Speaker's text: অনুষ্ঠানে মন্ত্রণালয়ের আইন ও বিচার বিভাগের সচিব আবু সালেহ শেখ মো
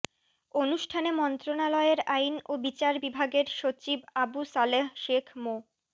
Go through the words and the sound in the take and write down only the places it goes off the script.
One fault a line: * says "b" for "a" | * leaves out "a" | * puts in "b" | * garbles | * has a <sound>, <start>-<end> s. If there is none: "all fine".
all fine